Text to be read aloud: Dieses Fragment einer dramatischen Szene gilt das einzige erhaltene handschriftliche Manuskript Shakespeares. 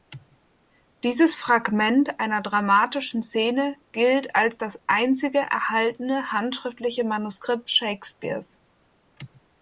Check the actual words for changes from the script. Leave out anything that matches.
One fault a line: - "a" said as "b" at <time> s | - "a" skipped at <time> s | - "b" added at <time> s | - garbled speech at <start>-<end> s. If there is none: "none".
- "als" added at 4.3 s